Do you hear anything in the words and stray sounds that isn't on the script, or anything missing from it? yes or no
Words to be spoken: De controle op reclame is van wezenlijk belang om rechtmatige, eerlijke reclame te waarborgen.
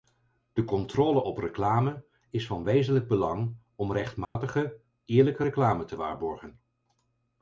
yes